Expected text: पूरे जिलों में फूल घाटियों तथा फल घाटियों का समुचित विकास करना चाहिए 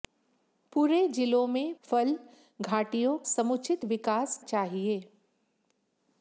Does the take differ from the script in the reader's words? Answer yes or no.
yes